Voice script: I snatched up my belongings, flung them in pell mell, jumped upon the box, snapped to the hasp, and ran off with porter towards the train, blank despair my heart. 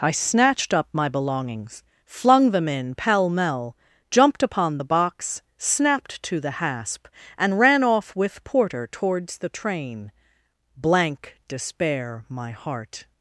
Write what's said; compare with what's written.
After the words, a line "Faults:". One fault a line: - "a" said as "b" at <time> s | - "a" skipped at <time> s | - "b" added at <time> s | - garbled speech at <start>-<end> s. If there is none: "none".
I snatched up my belongings, flung them in pell mell, jumped upon the box, snapped to the hasp, and ran off with porter towards the train, blank despair my heart.
Faults:
none